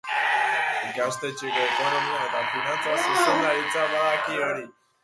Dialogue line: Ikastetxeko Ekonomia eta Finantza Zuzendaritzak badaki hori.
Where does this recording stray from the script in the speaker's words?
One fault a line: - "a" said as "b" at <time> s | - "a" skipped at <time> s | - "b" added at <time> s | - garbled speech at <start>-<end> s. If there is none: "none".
none